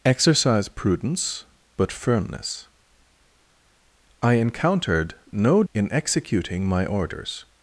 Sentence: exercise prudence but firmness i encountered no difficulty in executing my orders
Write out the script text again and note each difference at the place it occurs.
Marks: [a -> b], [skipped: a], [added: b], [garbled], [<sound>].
exercise prudence but firmness i encountered no [skipped: difficulty] in executing my orders